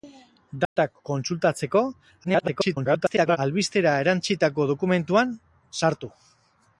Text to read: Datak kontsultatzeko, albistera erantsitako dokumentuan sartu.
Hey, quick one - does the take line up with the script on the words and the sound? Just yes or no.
no